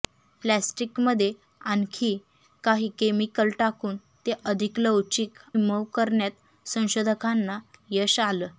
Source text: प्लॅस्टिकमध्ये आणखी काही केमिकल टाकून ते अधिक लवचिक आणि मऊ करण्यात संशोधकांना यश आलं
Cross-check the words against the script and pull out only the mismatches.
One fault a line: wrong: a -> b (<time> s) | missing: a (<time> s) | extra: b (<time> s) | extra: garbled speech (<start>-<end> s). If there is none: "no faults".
missing: आणि (5.4 s)